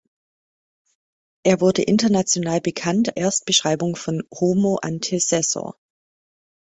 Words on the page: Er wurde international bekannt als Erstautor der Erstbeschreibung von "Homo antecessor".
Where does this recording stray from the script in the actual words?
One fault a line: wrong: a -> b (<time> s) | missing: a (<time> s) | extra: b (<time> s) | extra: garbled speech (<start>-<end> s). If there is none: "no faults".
missing: als Erstautor der (3.2 s)